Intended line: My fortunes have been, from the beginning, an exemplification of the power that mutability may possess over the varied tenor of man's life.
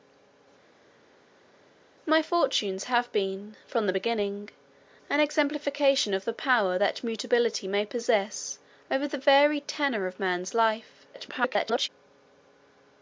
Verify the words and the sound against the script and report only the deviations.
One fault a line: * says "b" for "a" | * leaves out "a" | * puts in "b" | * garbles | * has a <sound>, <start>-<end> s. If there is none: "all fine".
* garbles